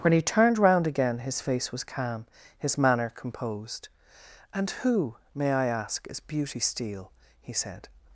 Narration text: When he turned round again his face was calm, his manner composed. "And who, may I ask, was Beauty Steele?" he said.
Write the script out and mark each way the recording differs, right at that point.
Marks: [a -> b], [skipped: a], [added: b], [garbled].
When he turned round again his face was calm, his manner composed. "And who, may I ask, [was -> is] Beauty Steele?" he said.